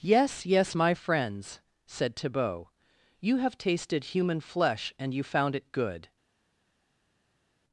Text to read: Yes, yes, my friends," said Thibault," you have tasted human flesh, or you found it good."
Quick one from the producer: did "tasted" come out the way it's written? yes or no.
yes